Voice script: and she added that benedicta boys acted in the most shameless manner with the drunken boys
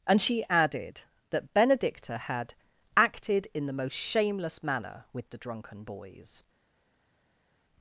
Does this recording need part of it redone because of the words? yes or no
yes